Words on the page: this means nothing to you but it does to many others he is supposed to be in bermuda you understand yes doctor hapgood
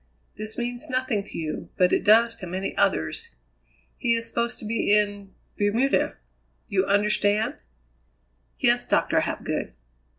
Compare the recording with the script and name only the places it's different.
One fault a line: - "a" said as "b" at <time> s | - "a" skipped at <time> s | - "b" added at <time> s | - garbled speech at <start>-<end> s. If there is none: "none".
none